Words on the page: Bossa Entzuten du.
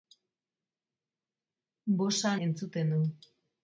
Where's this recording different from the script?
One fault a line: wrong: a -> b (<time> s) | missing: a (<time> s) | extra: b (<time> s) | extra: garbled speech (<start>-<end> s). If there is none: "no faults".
no faults